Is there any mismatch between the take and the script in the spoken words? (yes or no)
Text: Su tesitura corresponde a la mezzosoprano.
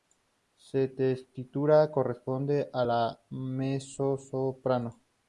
no